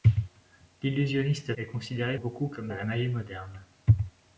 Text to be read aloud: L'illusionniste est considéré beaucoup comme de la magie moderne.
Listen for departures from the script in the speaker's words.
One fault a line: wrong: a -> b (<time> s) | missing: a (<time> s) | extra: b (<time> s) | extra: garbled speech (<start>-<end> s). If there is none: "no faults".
no faults